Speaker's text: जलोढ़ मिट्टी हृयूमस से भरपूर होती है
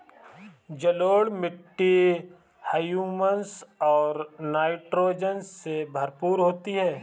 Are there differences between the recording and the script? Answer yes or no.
yes